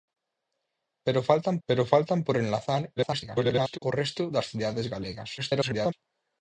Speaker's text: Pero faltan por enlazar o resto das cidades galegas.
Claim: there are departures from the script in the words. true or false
true